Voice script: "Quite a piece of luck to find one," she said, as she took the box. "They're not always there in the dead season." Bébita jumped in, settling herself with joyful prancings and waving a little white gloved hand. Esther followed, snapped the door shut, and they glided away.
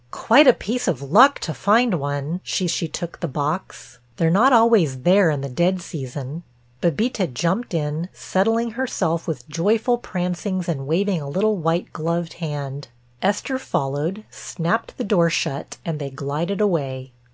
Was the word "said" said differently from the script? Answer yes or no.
yes